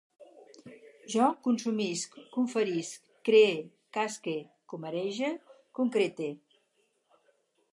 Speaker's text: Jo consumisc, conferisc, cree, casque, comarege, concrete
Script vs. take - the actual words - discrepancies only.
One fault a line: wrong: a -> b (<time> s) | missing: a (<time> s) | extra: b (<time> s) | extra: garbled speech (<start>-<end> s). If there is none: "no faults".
no faults